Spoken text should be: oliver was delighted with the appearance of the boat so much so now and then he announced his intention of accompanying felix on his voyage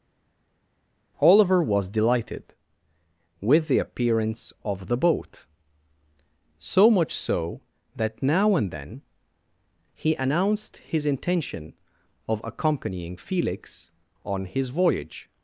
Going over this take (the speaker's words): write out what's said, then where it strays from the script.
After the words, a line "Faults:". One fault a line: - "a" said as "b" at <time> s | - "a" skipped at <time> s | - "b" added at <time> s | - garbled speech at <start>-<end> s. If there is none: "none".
oliver was delighted with the appearance of the boat so much so that now and then he announced his intention of accompanying felix on his voyage
Faults:
- "that" added at 7.9 s